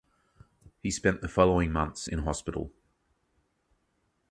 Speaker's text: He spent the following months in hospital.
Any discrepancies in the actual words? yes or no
no